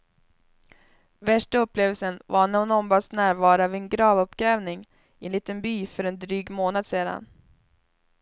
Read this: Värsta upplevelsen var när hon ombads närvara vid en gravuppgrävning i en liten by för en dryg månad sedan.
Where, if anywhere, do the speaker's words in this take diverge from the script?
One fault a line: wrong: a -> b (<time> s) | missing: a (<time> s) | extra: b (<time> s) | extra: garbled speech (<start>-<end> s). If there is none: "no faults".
no faults